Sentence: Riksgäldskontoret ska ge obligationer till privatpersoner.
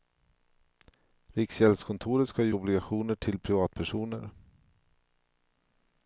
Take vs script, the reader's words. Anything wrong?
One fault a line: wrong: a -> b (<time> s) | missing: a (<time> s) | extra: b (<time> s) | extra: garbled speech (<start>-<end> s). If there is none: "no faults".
no faults